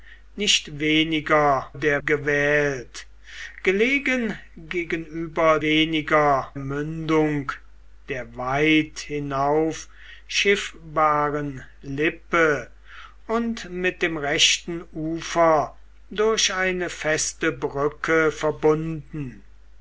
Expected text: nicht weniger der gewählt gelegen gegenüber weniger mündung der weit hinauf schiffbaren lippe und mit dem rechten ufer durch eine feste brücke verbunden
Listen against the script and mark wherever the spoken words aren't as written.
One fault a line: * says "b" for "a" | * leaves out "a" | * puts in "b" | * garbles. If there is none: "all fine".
all fine